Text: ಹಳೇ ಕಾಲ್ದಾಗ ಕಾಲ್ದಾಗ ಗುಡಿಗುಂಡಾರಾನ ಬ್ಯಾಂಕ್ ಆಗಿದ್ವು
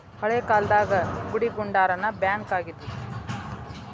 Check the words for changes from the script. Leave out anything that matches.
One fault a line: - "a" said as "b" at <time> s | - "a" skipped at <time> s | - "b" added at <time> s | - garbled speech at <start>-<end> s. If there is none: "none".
- "ಕಾಲ್ದಾಗ" skipped at 0.9 s